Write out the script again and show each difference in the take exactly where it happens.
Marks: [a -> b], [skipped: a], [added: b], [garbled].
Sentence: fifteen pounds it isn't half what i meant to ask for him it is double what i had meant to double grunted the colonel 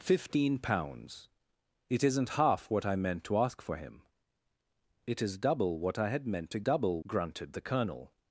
fifteen pounds it isn't half what i meant to ask for him it is double what i had meant to double grunted the colonel